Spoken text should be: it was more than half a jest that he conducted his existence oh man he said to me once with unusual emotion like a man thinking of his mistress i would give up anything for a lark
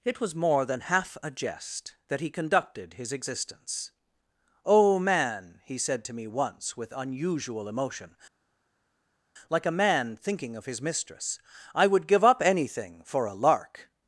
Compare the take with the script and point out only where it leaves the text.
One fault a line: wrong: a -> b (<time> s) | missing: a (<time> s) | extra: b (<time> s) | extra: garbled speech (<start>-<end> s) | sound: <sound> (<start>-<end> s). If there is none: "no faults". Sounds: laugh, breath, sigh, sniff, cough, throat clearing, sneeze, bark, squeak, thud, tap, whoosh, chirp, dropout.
no faults